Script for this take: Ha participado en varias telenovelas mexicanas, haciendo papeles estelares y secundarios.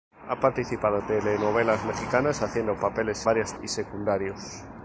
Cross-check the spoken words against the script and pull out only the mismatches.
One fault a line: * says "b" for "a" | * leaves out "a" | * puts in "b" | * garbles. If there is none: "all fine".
* leaves out "en varias"
* says "varias" for "estelares"